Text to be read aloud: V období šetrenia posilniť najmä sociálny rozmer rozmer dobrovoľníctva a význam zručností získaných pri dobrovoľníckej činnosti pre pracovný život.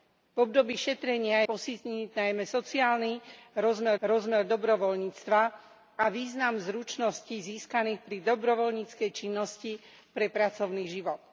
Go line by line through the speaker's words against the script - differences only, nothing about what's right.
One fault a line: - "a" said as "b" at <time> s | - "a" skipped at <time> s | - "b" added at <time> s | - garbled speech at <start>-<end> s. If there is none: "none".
none